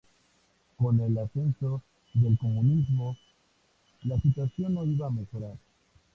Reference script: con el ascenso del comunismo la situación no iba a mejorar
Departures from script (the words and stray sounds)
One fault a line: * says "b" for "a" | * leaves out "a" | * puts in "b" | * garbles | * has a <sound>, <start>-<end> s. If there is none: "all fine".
all fine